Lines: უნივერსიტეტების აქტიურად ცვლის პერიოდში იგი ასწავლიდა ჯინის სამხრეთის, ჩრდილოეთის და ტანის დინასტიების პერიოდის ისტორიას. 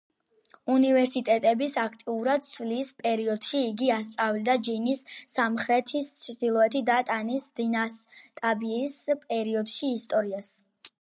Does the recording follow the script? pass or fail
pass